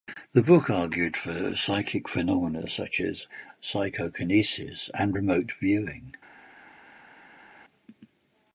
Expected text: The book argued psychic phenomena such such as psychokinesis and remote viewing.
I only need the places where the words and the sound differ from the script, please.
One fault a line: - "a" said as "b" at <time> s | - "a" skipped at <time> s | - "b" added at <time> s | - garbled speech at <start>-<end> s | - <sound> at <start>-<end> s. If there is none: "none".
- "for" added at 1.1 s
- "such" skipped at 3.0 s